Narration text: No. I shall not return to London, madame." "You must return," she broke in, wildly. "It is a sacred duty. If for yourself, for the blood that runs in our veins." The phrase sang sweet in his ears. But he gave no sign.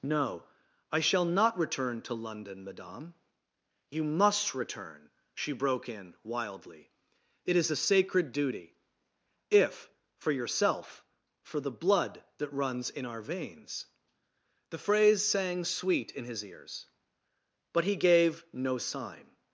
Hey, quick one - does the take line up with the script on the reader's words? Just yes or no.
yes